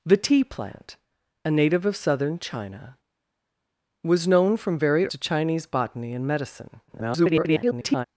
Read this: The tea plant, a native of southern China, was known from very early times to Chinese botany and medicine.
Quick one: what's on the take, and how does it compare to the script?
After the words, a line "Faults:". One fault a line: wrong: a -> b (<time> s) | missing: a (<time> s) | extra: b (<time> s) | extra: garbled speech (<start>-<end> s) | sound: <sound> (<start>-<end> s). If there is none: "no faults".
The tea plant, a native of southern China, was known from very to Chinese botany and medicine. [garbled]
Faults:
missing: early times (5.1 s)
extra: garbled speech (6.9-8.1 s)